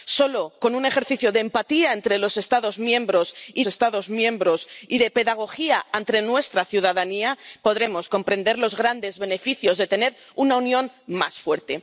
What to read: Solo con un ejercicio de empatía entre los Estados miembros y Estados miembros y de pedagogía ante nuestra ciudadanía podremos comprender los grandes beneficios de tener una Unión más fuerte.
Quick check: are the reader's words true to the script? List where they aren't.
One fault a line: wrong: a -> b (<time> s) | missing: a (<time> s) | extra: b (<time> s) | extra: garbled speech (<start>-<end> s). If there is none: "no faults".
no faults